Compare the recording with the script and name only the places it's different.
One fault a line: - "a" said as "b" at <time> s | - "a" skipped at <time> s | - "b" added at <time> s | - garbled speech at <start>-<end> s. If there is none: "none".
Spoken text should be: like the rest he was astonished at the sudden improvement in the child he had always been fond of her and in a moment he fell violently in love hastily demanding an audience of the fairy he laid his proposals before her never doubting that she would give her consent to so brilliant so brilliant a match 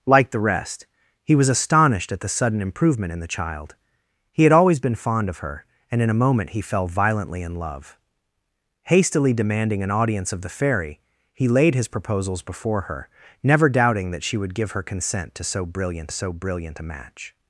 none